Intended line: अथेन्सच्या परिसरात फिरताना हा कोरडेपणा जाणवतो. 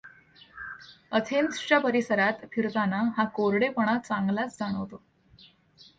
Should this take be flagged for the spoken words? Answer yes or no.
yes